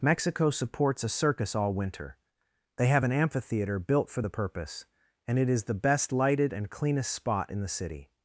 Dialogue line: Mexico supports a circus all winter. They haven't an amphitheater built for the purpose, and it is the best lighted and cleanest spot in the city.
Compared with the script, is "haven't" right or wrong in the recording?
wrong